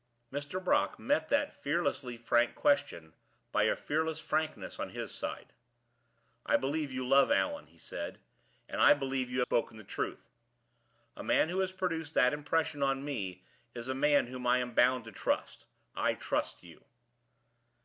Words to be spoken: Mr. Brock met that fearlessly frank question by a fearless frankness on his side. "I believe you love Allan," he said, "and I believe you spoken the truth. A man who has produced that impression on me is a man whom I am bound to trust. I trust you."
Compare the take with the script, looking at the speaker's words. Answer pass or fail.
pass